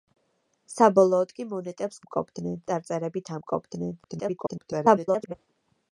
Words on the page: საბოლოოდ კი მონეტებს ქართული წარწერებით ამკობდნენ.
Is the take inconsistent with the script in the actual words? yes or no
yes